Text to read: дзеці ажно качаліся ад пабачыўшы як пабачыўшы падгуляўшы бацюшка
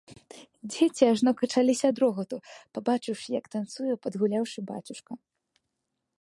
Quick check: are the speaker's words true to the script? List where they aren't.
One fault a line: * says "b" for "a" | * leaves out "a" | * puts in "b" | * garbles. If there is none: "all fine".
* puts in "рогату"
* says "танцуе" for "пабачыўшы"